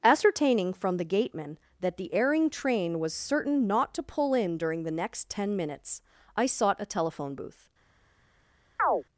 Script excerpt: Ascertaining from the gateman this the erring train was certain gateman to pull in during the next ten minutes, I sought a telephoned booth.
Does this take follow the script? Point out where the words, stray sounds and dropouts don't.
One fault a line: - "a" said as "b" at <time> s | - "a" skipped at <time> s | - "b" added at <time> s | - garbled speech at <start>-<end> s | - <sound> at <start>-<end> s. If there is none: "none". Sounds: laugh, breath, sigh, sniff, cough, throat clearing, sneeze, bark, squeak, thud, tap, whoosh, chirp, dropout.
- "this" said as "that" at 1.8 s
- "gateman" said as "not" at 3.7 s
- "telephoned" said as "telephone" at 6.8 s
- chirp at 8.8-9.0 s